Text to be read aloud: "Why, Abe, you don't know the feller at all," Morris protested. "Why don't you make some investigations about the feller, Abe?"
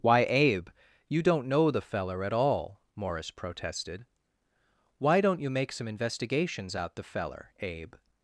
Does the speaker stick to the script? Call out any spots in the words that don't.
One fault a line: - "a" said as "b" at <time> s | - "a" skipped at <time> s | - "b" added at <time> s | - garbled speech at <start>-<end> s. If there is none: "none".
- "about" said as "out" at 6.7 s